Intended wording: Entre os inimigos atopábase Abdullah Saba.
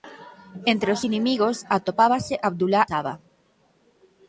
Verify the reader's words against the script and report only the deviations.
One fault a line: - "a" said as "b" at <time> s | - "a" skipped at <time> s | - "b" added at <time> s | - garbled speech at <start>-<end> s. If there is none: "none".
none